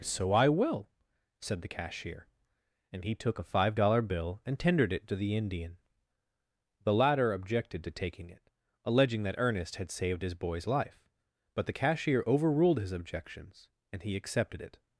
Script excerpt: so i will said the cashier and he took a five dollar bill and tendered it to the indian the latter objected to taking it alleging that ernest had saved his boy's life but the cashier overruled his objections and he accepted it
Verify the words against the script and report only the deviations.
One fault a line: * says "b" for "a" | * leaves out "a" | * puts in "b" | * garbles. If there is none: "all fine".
all fine